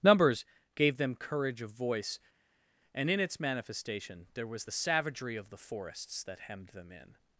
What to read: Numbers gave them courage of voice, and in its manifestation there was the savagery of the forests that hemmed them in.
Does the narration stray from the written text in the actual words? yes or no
no